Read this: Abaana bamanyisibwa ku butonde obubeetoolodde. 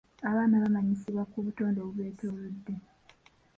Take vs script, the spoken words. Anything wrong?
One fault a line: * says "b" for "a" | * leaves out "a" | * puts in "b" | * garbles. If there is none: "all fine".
all fine